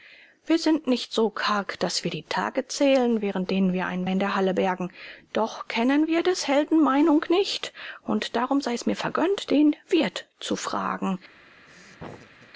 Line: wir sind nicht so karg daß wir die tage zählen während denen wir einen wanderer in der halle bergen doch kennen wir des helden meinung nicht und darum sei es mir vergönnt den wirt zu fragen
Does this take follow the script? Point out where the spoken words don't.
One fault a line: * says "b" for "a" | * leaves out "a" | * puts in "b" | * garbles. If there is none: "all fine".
* leaves out "wanderer"